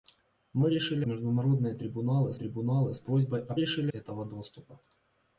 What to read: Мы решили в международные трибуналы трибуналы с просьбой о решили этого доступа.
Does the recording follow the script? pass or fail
pass